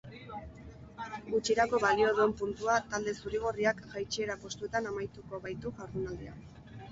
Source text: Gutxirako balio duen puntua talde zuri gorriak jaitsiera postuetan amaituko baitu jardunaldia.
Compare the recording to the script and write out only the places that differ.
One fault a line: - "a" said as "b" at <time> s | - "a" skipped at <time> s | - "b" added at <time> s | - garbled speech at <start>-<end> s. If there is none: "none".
none